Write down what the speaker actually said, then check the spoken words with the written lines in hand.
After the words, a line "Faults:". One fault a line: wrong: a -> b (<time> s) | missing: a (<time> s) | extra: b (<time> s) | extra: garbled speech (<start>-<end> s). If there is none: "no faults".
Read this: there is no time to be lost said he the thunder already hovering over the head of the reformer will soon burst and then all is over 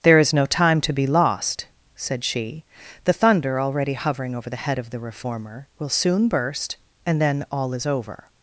there is no time to be lost said she the thunder already hovering over the head of the reformer will soon burst and then all is over
Faults:
wrong: he -> she (2.2 s)